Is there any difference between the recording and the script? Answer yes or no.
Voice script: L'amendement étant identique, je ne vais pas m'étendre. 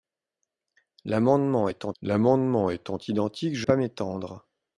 yes